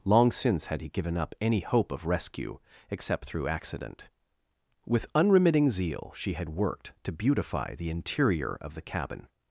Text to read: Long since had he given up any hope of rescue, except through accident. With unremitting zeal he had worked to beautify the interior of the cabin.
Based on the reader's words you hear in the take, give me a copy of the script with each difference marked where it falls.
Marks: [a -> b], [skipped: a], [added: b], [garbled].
Long since had he given up any hope of rescue, except through accident. With unremitting zeal [he -> she] had worked to beautify the interior of the cabin.